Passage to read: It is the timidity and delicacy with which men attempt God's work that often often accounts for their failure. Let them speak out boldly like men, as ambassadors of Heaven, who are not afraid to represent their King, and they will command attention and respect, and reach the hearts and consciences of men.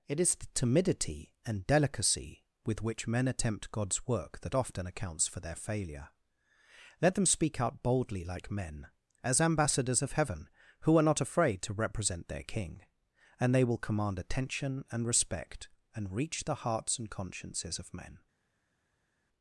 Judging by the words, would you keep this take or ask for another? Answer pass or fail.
fail